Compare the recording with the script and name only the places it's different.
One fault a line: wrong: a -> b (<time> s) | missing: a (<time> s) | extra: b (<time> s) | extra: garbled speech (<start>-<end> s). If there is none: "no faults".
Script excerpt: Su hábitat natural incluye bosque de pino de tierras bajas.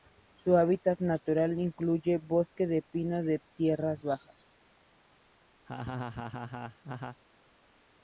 no faults